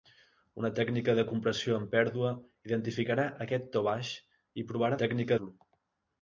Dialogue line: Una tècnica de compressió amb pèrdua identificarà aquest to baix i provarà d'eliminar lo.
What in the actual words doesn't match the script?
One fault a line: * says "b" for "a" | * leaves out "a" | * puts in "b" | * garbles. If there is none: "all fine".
* says "tècnica" for "d'eliminar"